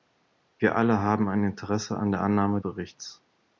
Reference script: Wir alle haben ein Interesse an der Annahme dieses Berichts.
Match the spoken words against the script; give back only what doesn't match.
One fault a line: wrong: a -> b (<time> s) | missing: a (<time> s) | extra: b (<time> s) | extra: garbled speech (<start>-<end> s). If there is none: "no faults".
missing: dieses (2.6 s)